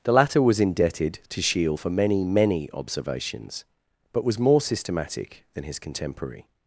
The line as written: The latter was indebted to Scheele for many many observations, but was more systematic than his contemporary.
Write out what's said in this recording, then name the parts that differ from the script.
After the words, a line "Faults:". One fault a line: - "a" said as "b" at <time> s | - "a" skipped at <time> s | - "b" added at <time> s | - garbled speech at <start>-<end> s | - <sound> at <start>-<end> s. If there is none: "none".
The latter was indebted to Scheele for many many observations, but was more systematic than his contemporary.
Faults:
none